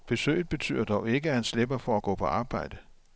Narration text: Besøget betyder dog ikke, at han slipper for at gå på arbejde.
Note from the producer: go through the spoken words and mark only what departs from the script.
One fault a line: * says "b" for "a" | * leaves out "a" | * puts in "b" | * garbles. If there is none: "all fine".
all fine